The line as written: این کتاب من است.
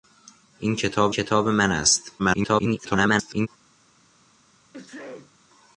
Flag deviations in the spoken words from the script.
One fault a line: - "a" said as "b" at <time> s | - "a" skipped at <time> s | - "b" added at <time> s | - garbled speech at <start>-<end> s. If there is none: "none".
- "کتاب" added at 1.1 s
- garbled speech at 2.2-3.5 s